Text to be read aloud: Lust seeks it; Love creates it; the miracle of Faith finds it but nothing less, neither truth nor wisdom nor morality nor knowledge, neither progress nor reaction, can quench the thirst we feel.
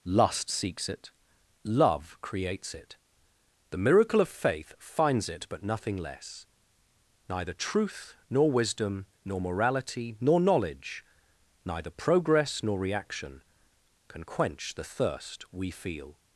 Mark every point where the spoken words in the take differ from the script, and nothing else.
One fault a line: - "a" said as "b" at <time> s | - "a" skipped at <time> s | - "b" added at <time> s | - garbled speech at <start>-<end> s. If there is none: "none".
none